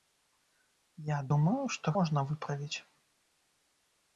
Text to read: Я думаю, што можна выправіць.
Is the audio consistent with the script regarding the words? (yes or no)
yes